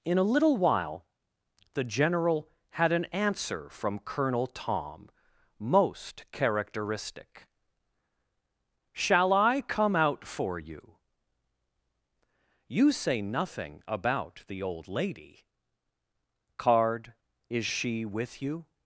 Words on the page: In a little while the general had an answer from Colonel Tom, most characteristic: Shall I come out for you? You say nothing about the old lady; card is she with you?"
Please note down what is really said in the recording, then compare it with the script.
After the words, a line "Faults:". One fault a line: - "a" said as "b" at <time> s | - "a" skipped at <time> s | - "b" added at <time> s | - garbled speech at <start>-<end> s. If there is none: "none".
In a little while the general had an answer from Colonel Tom, most characteristic: Shall I come out for you? You say nothing about the old lady; card is she with you?"
Faults:
none